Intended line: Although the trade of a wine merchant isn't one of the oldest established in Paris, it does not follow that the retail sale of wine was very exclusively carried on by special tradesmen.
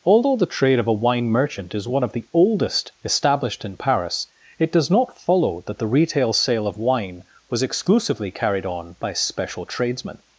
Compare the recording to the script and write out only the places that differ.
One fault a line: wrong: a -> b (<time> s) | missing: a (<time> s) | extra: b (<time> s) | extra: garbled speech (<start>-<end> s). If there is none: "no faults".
wrong: isn't -> is (1.8 s)
missing: very (7.6 s)